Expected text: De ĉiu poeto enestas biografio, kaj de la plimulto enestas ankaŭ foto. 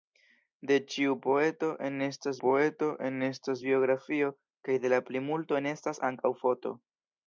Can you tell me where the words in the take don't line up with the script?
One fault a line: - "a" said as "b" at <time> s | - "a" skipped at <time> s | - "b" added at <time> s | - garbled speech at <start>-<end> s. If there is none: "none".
- "poeto enestas" added at 2.4 s